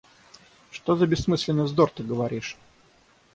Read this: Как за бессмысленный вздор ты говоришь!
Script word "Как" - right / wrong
wrong